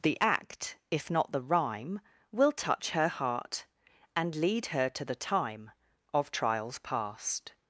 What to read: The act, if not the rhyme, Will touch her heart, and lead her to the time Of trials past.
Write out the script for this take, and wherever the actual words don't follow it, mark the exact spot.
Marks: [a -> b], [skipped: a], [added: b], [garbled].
The act, if not the rhyme, Will touch her heart, and lead her to the time Of trials past.